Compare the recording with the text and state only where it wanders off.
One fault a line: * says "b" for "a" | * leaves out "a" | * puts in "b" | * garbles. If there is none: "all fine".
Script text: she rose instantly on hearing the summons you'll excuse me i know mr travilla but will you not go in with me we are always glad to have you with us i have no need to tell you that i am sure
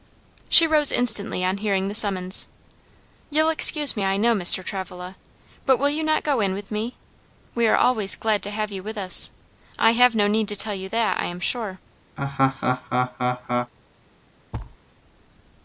all fine